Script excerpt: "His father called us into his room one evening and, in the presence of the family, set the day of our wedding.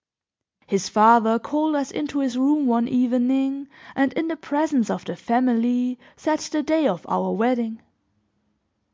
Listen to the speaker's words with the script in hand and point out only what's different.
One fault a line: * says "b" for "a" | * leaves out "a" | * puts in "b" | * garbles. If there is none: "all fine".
all fine